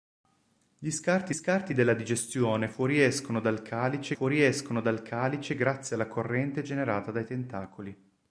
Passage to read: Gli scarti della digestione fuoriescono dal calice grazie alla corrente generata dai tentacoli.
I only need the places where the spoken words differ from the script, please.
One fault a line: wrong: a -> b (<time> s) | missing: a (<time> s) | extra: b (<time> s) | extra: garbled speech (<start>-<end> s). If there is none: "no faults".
extra: scarti (1.3 s)
extra: fuoriescono dal calice (4.1 s)